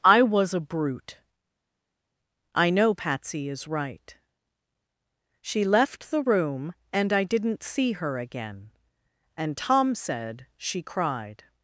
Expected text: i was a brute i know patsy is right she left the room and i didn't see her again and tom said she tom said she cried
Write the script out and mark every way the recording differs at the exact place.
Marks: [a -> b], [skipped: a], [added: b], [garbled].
i was a brute i know patsy is right she left the room and i didn't see her again and tom said she [skipped: tom said she] cried